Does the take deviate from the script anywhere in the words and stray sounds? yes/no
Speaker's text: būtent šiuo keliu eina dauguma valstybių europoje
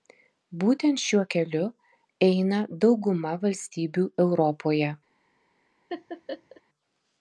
yes